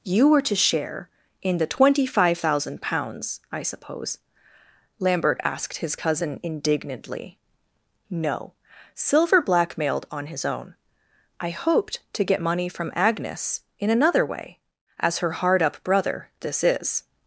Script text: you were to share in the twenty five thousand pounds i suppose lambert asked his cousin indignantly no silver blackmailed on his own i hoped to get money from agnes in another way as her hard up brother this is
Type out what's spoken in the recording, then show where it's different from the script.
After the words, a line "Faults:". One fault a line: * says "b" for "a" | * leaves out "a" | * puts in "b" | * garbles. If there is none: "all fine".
you were to share in the twenty five thousand pounds i suppose lambert asked his cousin indignantly no silver blackmailed on his own i hoped to get money from agnes in another way as her hard up brother this is
Faults:
all fine